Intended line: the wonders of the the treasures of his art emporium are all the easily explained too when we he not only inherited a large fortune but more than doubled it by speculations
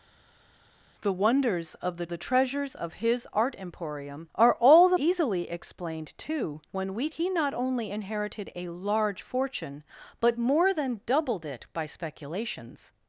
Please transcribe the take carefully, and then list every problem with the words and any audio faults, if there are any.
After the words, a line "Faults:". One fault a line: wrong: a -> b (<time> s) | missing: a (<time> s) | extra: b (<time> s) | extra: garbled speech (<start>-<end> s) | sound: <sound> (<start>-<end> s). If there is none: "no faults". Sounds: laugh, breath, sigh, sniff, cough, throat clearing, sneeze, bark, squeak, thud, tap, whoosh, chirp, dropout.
the wonders of the the treasures of his art emporium are all the easily explained too when we he not only inherited a large fortune but more than doubled it by speculations
Faults:
no faults